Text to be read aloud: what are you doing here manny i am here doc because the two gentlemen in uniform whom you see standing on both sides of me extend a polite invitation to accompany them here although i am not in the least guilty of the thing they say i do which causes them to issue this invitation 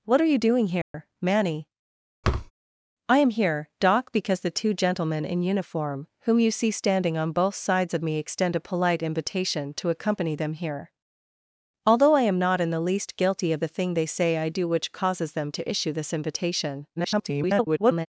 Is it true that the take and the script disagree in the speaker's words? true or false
true